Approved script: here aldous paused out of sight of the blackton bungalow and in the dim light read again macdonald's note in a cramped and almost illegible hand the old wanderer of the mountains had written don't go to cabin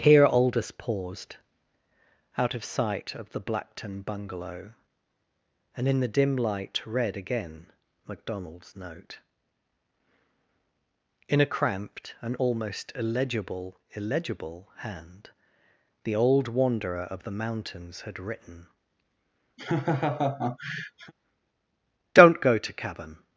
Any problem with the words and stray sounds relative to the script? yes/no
yes